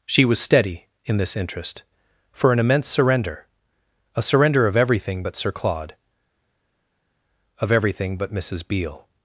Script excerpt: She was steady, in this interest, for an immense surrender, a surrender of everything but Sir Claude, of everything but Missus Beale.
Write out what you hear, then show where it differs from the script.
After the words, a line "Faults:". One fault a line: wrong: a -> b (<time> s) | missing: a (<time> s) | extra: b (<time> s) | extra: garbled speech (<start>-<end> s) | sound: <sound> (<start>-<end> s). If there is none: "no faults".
She was steady, in this interest, for an immense surrender, a surrender of everything but Sir Claude, of everything but Missus Beale.
Faults:
no faults